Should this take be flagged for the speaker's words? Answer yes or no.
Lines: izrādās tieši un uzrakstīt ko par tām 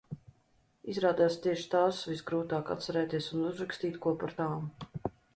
yes